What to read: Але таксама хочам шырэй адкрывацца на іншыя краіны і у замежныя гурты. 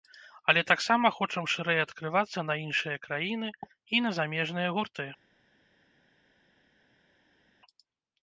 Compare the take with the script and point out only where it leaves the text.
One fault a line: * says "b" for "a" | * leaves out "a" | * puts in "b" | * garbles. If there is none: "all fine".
* says "на" for "у"